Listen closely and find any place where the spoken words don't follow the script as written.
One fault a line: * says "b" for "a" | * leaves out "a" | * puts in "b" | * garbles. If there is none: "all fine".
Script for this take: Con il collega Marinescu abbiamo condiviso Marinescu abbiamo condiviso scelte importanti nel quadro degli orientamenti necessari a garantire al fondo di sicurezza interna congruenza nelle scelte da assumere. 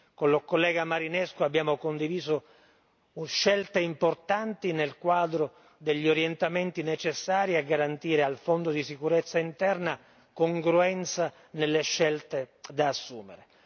* leaves out "Marinescu abbiamo condiviso"